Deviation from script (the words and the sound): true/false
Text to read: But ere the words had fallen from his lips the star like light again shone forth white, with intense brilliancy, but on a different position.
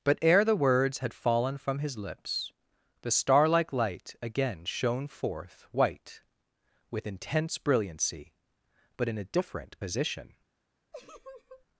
true